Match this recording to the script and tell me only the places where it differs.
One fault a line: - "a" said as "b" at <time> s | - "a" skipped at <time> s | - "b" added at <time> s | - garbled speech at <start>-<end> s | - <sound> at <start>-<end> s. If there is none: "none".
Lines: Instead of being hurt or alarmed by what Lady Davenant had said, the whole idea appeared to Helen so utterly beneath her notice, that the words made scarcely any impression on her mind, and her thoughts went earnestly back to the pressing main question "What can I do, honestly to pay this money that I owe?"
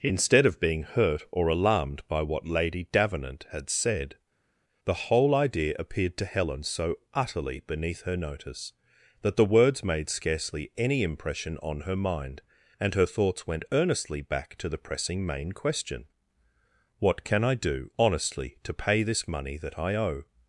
none